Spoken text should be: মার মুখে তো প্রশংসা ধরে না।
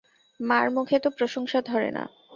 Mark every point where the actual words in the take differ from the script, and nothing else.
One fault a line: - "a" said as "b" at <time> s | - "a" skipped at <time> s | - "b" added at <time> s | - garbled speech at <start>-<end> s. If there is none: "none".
none